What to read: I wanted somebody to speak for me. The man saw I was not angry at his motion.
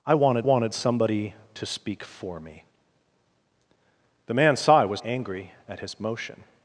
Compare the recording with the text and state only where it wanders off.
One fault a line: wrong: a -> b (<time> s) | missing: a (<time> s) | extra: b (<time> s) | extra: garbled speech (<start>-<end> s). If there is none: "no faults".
extra: wanted (0.4 s)
missing: not (5.0 s)